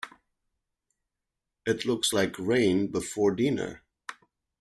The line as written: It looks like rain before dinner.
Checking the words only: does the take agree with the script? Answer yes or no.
yes